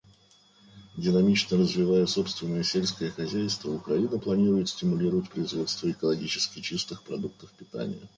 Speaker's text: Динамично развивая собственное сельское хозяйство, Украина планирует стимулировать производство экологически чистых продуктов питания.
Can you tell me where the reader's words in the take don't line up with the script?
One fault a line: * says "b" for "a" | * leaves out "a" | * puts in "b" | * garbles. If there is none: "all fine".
all fine